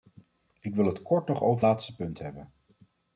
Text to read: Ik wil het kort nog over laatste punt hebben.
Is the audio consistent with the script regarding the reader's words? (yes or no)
yes